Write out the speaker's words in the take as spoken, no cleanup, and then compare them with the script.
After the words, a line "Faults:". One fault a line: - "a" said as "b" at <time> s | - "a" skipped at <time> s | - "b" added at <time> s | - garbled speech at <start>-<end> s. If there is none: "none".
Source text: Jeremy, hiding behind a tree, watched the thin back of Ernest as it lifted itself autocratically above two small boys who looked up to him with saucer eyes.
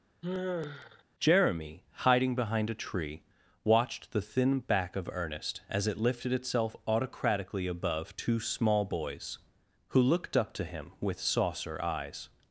Jeremy, hiding behind a tree, watched the thin back of Ernest as it lifted itself autocratically above two small boys who looked up to him with saucer eyes.
Faults:
none